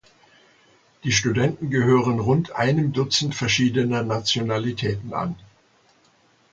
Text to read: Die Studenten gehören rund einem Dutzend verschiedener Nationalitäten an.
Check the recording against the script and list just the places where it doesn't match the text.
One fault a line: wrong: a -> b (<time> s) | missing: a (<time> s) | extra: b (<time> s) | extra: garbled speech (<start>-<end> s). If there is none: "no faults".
no faults